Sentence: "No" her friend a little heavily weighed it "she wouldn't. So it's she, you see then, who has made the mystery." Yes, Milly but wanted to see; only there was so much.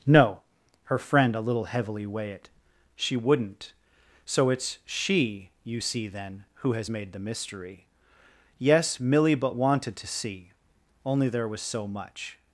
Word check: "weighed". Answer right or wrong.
wrong